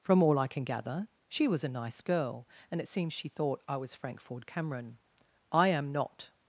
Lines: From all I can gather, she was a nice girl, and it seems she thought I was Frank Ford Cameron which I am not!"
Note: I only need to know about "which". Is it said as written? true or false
false